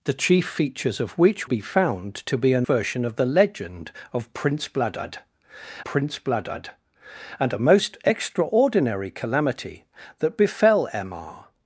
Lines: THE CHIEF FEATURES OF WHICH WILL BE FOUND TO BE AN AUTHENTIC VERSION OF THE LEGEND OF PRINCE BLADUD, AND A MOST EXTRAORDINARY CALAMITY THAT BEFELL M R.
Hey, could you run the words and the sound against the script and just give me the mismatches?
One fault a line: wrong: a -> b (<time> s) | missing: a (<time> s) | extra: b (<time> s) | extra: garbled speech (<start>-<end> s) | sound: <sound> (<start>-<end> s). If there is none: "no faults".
missing: WILL (1.5 s)
missing: AUTHENTIC (2.7 s)
extra: PRINCE BLADUD (5.8 s)